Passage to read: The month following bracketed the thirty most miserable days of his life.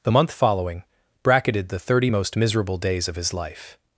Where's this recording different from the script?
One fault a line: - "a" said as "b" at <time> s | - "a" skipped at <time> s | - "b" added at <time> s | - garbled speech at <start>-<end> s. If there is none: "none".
none